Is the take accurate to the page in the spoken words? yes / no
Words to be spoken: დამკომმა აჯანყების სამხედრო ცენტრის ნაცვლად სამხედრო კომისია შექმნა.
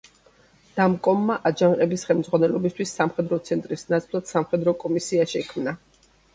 no